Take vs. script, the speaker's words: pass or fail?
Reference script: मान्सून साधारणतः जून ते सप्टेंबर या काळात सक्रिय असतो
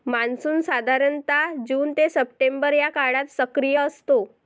pass